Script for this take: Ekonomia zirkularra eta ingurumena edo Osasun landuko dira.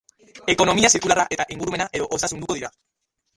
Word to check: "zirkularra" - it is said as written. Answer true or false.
true